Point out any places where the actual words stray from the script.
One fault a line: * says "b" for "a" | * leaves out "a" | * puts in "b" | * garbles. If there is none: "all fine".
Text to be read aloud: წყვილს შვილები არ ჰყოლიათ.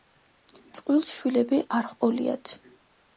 all fine